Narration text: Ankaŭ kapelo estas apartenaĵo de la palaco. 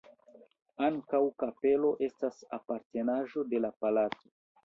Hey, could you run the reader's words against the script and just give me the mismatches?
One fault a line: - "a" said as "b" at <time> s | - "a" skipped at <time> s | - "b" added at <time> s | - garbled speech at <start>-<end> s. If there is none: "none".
none